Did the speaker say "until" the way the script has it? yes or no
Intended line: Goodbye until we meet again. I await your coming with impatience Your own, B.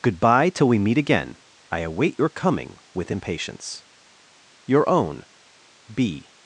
no